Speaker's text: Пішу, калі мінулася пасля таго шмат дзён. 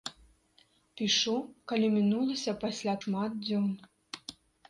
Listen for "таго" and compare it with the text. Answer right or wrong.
wrong